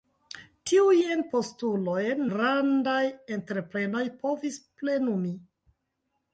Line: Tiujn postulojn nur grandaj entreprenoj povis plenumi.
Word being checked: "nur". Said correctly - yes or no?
no